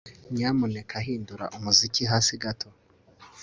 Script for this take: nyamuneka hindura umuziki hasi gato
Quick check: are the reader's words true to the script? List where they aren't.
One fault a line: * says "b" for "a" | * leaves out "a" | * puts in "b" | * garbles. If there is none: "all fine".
all fine